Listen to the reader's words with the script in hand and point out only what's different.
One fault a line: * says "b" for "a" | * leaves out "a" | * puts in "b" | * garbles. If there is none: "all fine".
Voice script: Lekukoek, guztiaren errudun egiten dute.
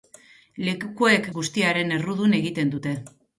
all fine